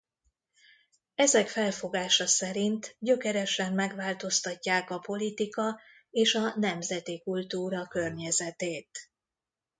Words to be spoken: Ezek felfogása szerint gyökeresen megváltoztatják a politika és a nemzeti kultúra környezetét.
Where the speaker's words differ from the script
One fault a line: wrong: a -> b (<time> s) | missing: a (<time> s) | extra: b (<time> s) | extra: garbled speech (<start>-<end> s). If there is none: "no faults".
no faults